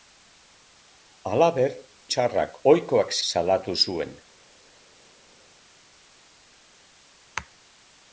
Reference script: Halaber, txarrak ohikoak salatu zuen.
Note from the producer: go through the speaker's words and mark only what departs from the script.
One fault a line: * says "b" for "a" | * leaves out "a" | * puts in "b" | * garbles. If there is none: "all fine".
all fine